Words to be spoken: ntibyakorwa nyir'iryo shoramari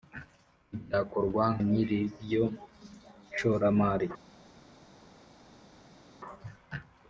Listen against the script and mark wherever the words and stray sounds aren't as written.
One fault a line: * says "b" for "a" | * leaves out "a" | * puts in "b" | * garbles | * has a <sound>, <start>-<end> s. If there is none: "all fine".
all fine